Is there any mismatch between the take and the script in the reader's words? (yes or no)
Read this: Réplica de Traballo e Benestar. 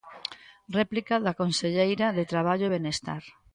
yes